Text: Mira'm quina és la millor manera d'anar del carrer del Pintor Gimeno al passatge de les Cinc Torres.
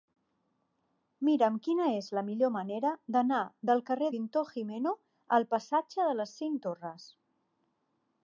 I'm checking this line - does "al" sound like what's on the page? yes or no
yes